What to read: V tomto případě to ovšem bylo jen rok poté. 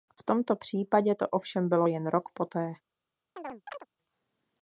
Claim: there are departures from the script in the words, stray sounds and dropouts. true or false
true